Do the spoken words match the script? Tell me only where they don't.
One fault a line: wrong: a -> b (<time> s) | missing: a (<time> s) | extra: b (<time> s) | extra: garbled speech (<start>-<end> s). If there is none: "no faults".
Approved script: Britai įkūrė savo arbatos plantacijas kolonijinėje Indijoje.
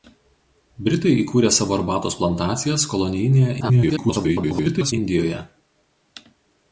extra: garbled speech (3.6-4.9 s)